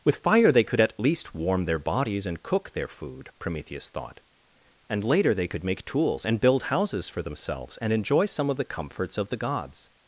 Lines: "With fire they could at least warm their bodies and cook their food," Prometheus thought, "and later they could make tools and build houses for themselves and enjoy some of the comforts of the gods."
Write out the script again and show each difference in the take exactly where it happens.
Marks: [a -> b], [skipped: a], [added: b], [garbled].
"With fire they could at least warm their bodies and cook their food," Prometheus thought, "and later they could make tools and build houses for themselves and enjoy some of the comforts of the gods."